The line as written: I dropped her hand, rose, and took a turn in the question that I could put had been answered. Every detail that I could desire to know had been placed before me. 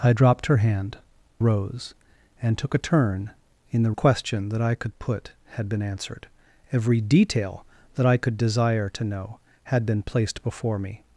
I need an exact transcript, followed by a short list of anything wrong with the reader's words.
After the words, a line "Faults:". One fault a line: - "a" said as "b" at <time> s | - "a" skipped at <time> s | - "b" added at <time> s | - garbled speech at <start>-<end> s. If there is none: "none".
I dropped her hand, rose, and took a turn in the question that I could put had been answered. Every detail that I could desire to know had been placed before me.
Faults:
none